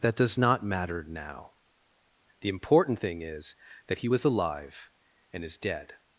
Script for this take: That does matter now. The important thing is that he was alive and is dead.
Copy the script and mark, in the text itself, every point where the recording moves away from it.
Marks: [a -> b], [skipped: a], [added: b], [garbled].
That does [added: not] matter now. The important thing is that he was alive and is dead.